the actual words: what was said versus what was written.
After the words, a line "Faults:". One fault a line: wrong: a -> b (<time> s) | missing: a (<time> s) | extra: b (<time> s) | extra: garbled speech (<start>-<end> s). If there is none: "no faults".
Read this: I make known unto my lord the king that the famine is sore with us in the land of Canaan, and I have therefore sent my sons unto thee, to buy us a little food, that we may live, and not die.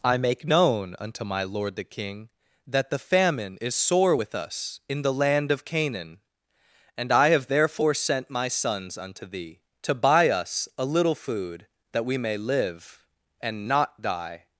I make known unto my lord the king that the famine is sore with us in the land of Canaan, and I have therefore sent my sons unto thee, to buy us a little food, that we may live, and not die.
Faults:
no faults